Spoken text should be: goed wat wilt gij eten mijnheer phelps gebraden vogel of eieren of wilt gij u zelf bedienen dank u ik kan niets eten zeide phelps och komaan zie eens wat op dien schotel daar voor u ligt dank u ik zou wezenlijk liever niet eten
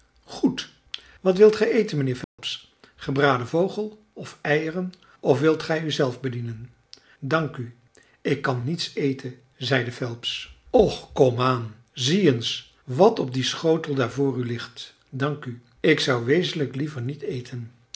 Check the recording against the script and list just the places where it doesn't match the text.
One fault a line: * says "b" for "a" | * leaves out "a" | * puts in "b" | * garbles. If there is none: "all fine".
all fine